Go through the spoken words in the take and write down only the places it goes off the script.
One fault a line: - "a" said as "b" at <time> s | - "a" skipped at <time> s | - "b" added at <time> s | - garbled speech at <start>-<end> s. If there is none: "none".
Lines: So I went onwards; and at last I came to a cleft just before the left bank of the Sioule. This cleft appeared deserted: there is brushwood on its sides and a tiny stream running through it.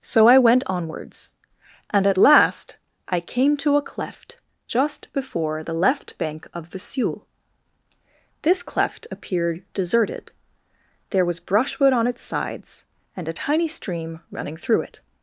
- "is" said as "was" at 11.2 s